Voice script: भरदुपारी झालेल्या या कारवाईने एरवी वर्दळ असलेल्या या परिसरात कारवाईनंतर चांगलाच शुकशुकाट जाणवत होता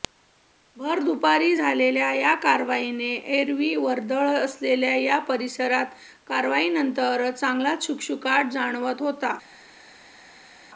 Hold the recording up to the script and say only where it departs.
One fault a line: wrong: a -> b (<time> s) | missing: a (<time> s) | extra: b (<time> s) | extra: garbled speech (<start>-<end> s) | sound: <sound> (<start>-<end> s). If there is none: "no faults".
no faults